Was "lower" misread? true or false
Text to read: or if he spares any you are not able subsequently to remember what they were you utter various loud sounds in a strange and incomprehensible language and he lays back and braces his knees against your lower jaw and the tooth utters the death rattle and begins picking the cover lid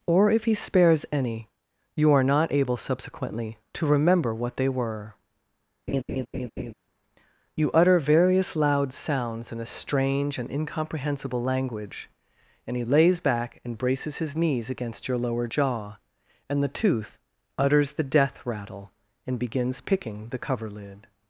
false